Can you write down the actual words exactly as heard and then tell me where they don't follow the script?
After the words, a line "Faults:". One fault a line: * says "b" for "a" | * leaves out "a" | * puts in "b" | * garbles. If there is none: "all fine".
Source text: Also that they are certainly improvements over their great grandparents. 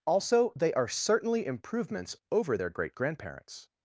Also they are certainly improvements over their great grandparents.
Faults:
* leaves out "that"